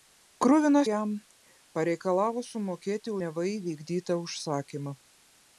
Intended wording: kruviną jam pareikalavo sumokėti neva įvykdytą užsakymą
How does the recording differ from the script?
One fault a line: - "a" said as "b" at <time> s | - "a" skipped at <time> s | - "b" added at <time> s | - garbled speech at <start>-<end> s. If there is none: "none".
none